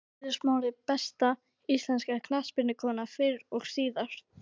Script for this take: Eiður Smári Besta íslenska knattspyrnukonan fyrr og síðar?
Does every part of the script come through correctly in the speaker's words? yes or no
yes